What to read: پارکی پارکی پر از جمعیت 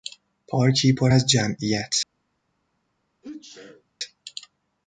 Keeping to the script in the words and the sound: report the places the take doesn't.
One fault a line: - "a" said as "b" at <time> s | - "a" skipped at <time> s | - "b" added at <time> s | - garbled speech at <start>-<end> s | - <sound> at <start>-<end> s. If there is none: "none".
- "پارکی" skipped at 0.9 s
- sneeze at 3.2-3.8 s